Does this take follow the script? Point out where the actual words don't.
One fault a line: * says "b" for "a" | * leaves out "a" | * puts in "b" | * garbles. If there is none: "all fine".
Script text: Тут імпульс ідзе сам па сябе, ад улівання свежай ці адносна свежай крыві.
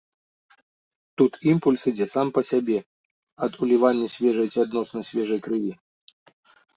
all fine